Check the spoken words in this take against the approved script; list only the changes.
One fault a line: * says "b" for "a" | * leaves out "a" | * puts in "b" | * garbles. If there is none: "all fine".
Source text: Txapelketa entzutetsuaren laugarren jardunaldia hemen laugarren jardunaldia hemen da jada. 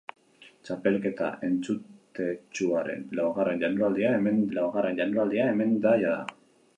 all fine